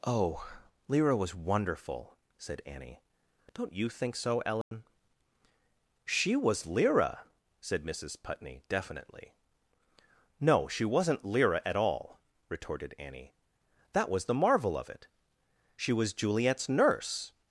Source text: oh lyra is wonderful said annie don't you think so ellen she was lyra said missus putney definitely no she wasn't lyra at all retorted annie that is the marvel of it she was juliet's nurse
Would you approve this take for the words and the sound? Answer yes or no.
no